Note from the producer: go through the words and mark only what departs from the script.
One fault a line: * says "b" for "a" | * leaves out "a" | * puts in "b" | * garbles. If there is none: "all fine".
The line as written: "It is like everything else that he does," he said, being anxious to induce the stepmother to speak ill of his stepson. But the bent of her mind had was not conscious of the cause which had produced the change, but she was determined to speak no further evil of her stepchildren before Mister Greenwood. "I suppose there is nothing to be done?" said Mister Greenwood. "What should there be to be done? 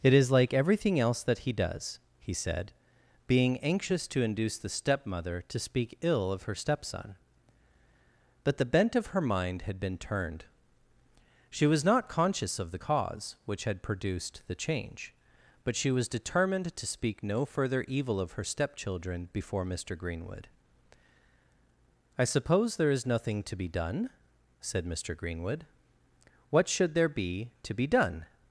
* says "her" for "his"
* puts in "been turned She"